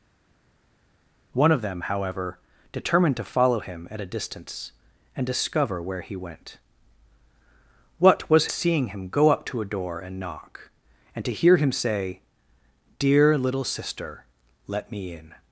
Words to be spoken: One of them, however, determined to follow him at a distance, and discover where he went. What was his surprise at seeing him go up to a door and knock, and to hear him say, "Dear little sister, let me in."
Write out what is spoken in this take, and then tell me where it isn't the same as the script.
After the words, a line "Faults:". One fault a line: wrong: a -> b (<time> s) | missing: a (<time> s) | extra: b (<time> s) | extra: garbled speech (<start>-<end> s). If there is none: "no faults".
One of them, however, determined to follow him at a distance, and discover where he went. What was seeing him go up to a door and knock, and to hear him say, "Dear little sister, let me in."
Faults:
missing: his surprise at (8.5 s)